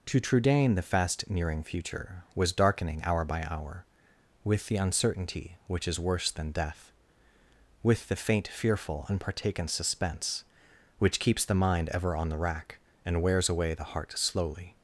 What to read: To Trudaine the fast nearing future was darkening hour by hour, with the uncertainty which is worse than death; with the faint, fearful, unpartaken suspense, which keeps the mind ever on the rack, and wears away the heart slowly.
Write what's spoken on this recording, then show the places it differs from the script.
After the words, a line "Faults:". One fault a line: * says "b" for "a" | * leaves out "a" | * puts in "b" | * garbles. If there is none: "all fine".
To Trudaine the fast nearing future was darkening hour by hour, with the uncertainty which is worse than death; with the faint, fearful, unpartaken suspense, which keeps the mind ever on the rack, and wears away the heart slowly.
Faults:
all fine